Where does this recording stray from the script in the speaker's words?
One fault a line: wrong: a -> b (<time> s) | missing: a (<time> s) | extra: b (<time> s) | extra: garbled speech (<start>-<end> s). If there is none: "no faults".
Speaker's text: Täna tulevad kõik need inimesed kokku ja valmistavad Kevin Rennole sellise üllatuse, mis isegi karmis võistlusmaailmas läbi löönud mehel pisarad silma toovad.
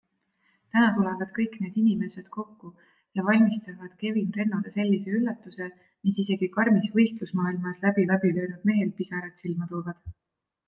extra: läbi (8.1 s)